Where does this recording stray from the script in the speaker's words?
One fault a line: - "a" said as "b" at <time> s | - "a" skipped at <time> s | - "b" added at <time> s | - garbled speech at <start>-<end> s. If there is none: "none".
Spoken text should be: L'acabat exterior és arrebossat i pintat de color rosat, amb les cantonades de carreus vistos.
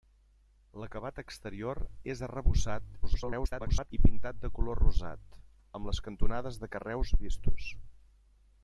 - garbled speech at 3.0-3.9 s